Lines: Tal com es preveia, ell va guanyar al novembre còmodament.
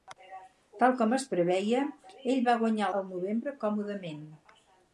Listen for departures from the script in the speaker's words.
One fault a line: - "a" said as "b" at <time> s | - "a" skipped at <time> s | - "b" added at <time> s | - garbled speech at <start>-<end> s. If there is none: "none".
none